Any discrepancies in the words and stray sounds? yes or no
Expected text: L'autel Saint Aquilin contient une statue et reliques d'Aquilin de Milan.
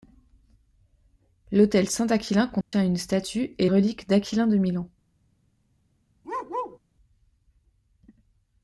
yes